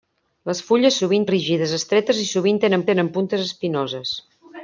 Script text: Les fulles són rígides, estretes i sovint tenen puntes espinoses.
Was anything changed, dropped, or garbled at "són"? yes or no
yes